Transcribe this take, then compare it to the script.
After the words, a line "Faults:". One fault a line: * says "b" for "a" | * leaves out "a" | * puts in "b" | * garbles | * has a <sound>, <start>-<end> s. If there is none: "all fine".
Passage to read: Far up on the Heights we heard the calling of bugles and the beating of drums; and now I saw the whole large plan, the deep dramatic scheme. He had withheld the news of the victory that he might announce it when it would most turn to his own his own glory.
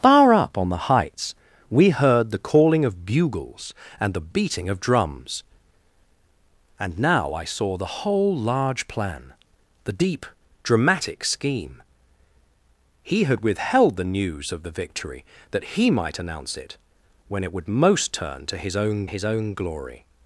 Far up on the Heights we heard the calling of bugles and the beating of drums; and now I saw the whole large plan, the deep dramatic scheme. He had withheld the news of the victory that he might announce it when it would most turn to his own his own glory.
Faults:
all fine